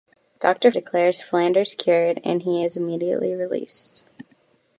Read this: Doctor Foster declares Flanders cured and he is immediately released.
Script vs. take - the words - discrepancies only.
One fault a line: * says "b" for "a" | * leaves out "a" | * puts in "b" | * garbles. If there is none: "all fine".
* leaves out "Foster"